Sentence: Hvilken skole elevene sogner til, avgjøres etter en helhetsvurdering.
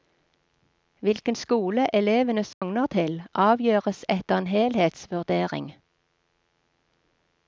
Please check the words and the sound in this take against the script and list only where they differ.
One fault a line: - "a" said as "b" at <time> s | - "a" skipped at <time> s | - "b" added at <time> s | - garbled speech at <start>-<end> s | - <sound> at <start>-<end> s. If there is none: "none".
- dropout at 2.5-2.6 s